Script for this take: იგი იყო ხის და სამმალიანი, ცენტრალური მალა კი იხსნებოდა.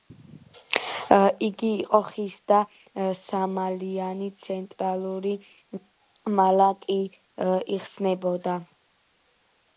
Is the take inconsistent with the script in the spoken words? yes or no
no